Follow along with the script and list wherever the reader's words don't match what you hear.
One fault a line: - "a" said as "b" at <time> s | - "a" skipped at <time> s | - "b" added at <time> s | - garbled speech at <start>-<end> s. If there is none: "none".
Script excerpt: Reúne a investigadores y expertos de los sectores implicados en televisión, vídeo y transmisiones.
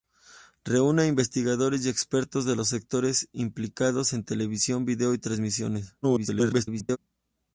- garbled speech at 6.0-7.0 s